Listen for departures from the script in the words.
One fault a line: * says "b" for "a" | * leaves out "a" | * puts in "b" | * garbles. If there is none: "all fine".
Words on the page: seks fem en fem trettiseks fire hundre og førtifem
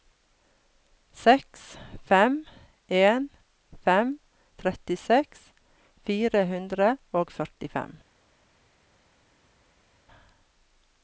all fine